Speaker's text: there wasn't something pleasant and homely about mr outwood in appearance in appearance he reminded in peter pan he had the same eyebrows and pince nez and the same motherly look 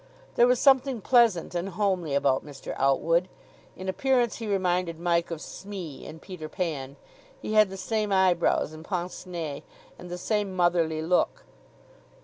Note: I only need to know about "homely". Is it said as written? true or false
true